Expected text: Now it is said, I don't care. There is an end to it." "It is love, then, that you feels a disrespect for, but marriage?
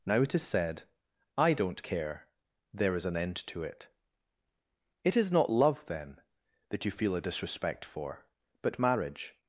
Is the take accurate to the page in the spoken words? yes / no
no